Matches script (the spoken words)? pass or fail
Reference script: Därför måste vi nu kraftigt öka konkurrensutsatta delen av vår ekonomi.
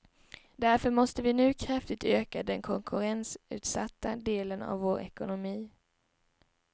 fail